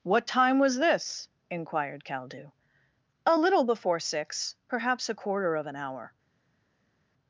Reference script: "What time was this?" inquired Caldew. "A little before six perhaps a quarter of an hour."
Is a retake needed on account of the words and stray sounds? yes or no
no